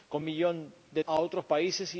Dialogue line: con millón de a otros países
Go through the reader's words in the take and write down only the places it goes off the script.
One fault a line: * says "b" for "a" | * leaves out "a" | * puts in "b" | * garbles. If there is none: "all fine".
all fine